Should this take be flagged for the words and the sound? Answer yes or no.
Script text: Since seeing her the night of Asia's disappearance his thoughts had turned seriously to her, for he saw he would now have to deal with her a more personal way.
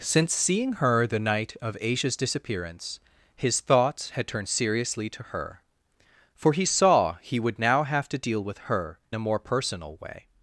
no